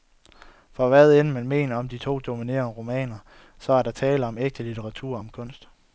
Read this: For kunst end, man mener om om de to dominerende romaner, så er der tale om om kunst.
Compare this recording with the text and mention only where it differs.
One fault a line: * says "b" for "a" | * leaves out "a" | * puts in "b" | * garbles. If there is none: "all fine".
* says "hvad" for "kunst"
* leaves out "om"
* puts in "ægte litteratur"